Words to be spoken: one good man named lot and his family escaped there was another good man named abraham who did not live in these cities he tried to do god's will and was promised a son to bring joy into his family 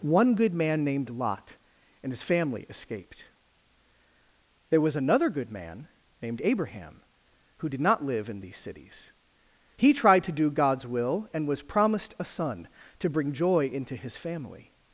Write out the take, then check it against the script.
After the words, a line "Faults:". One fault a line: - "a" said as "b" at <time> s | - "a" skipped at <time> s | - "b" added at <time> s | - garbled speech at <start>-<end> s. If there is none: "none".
one good man named lot and his family escaped there was another good man named abraham who did not live in these cities he tried to do god's will and was promised a son to bring joy into his family
Faults:
none